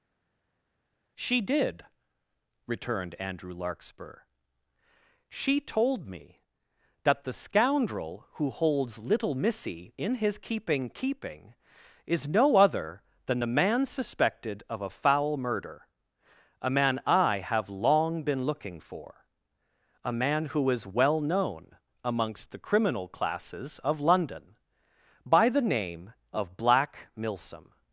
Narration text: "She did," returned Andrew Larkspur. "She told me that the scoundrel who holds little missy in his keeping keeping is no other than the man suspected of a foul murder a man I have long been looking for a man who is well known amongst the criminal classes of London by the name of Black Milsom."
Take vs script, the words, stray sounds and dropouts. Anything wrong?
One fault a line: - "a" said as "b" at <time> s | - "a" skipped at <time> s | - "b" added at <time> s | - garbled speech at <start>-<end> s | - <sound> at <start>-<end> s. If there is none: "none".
none